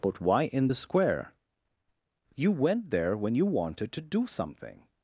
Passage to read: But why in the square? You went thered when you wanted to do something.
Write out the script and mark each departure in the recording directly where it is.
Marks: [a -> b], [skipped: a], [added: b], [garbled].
But why in the square? You went [thered -> there] when you wanted to do something.